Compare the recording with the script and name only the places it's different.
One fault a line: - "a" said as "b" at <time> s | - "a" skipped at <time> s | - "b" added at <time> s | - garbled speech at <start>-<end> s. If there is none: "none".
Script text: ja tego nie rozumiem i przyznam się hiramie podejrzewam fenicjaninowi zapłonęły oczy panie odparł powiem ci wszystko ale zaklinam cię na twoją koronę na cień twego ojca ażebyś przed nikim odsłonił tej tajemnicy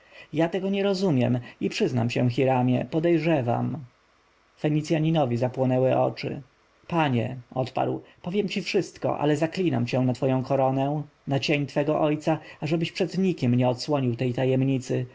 - "nie" added at 13.5 s